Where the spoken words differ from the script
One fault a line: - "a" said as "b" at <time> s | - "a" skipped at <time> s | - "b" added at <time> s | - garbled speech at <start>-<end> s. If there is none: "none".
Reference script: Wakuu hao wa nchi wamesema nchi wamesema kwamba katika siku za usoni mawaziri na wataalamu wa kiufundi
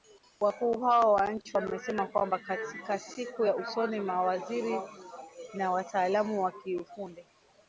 - "nchi wamesema" skipped at 2.1 s